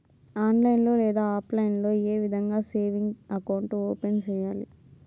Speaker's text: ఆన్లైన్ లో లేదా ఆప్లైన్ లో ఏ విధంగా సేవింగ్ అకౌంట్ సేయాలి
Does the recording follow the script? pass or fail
fail